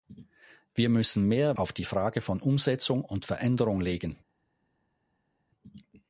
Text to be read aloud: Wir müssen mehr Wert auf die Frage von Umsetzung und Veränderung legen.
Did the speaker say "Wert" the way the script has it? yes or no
no